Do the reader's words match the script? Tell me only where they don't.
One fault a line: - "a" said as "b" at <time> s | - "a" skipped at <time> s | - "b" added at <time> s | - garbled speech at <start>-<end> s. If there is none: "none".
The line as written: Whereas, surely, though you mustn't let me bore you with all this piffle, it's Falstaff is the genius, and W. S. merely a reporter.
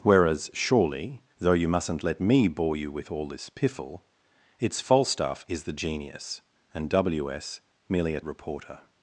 none